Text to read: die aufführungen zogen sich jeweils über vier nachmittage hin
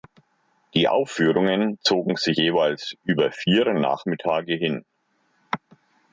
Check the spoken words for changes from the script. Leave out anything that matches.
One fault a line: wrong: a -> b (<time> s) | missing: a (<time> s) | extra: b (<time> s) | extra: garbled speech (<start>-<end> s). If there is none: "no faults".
no faults